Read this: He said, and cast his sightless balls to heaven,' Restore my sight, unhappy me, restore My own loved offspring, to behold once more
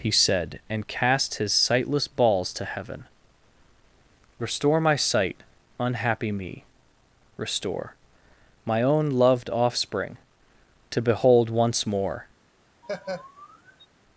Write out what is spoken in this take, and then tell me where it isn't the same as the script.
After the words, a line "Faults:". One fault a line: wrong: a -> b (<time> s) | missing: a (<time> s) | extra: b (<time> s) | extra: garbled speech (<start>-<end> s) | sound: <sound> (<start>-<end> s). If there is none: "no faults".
He said, and cast his sightless balls to heaven,' Restore my sight, unhappy me, restore My own loved offspring, to behold once more
Faults:
sound: laugh (12.8-13.9 s)